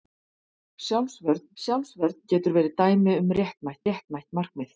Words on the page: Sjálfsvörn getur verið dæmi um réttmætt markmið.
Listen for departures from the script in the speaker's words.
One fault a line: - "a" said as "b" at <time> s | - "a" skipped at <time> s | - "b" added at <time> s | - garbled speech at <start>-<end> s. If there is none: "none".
- "sjálfsvörn" added at 1.6 s
- "réttmætt" added at 3.9 s